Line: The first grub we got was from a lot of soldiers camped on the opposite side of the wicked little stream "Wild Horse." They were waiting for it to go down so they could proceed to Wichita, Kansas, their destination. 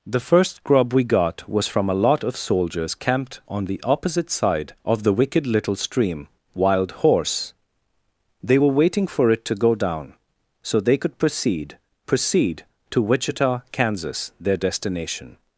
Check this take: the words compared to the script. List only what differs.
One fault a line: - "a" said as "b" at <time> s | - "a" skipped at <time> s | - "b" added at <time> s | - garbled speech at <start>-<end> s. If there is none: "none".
- "proceed" added at 12.1 s